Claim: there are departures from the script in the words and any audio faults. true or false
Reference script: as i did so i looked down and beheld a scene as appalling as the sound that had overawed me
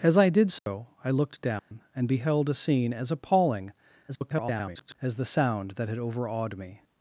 true